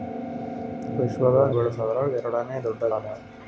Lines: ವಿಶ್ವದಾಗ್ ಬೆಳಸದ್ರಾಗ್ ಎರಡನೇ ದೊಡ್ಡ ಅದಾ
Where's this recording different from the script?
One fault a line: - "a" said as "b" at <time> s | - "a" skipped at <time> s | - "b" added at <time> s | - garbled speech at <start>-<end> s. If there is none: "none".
none